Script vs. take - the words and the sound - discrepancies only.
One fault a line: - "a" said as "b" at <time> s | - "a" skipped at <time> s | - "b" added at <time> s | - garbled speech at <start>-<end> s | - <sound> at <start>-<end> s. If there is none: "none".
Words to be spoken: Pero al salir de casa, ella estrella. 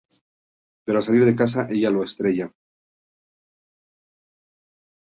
- "lo" added at 1.9 s